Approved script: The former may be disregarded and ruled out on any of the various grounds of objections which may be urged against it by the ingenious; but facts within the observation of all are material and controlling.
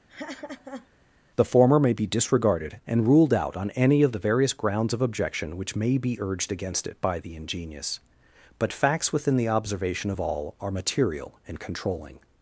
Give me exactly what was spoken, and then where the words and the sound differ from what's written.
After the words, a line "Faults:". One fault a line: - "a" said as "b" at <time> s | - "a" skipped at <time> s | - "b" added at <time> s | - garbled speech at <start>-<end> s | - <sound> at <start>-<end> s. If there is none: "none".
The former may be disregarded and ruled out on any of the various grounds of objection which may be urged against it by the ingenious; but facts within the observation of all are material and controlling.
Faults:
- laugh at 0.1-0.9 s
- "objections" said as "objection" at 5.0 s